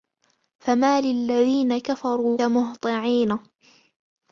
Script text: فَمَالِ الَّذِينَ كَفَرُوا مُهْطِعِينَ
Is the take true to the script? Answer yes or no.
yes